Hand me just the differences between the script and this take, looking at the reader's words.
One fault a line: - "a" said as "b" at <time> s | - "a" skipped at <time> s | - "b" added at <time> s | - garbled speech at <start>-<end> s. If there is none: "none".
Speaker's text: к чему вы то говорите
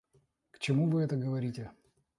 - "то" said as "это" at 1.0 s